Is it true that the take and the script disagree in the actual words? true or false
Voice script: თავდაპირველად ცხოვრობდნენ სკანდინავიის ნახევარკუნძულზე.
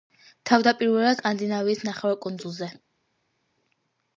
true